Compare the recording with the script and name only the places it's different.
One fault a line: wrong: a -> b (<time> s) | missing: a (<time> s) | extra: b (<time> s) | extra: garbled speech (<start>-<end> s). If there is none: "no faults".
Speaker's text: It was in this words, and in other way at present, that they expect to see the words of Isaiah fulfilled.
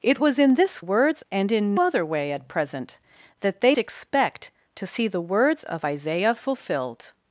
no faults